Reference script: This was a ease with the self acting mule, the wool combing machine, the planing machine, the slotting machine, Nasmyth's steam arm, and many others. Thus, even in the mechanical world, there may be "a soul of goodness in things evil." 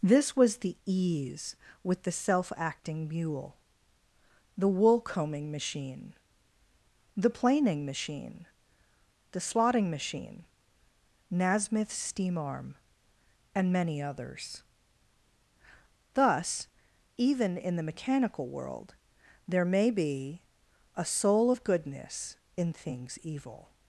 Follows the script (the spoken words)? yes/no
no